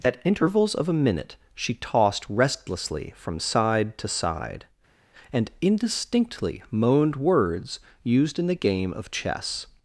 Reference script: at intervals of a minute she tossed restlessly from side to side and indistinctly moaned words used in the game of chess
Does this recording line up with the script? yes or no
yes